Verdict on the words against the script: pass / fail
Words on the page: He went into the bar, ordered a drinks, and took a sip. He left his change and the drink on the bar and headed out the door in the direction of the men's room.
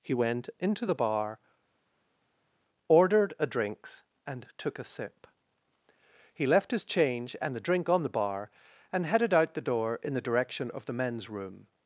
pass